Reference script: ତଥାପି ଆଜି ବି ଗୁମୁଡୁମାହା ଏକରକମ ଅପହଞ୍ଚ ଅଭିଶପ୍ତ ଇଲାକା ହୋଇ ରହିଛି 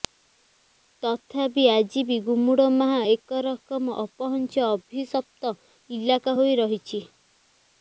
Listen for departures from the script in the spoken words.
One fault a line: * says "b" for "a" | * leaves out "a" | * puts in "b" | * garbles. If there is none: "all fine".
all fine